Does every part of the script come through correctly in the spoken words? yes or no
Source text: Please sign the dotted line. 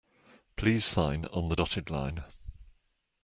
no